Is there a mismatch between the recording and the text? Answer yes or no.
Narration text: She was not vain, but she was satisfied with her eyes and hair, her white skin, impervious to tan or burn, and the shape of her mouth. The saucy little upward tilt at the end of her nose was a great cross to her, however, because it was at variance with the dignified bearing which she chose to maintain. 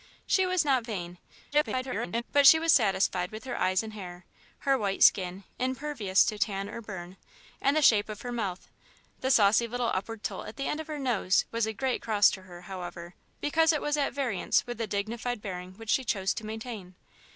yes